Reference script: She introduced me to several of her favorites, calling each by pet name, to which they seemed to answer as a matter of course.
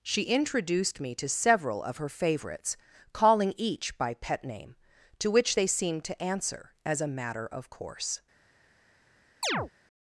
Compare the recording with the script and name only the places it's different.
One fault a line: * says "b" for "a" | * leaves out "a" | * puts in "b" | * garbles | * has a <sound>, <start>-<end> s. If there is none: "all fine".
* has a chirp, 9.4-9.7 s